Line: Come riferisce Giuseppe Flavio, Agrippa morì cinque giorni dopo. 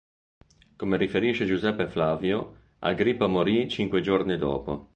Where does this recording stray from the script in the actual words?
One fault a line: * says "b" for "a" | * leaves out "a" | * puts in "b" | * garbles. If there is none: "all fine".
all fine